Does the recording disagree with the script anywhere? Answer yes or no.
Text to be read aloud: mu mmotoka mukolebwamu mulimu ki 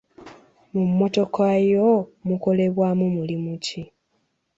yes